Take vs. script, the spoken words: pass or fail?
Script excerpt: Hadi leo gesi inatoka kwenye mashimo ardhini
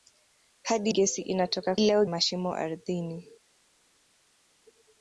fail